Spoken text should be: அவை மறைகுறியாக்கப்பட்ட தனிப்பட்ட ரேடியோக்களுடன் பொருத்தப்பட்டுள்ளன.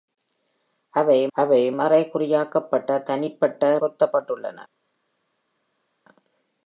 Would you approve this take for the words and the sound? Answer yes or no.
no